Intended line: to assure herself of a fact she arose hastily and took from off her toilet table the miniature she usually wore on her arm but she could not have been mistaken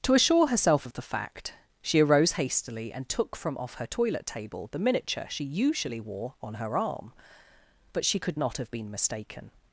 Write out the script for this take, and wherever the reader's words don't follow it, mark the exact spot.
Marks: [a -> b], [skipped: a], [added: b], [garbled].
to assure herself of [a -> the] fact she arose hastily and took from off her toilet table the miniature she usually wore on her arm but she could not have been mistaken